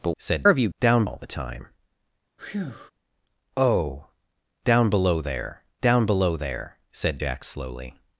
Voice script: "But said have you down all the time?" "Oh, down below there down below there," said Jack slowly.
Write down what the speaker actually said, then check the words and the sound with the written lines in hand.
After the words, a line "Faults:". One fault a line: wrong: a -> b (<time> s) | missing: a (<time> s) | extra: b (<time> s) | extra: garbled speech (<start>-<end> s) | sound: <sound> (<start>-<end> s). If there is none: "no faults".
"But said have you down all the time?" "Oh, down below there down below there," said Jack slowly.
Faults:
sound: breath (2.4-2.9 s)